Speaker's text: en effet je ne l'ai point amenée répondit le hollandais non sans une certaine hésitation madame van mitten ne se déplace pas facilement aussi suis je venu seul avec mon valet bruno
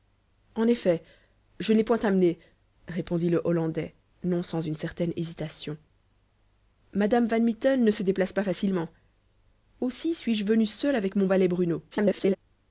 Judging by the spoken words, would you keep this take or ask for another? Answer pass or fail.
fail